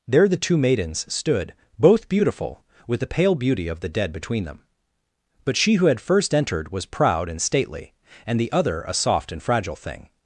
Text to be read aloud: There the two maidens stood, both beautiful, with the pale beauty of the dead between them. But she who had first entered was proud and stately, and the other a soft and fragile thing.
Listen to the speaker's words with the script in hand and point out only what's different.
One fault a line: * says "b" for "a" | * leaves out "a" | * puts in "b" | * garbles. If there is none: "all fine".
all fine